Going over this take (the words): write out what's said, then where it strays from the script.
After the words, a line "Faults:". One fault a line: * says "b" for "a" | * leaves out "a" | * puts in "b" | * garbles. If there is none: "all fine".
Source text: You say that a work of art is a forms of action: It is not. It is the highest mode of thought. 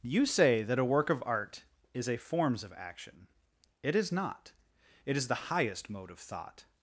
You say that a work of art is a forms of action: It is not. It is the highest mode of thought.
Faults:
all fine